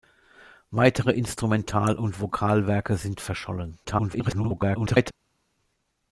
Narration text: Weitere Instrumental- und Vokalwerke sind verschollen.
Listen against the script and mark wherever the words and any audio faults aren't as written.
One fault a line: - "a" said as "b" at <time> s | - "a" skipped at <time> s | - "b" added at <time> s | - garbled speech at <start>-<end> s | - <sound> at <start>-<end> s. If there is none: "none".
- garbled speech at 3.8-5.1 s